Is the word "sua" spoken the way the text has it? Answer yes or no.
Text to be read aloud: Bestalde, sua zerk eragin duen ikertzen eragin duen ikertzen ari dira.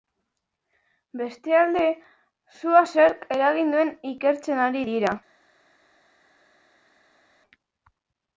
yes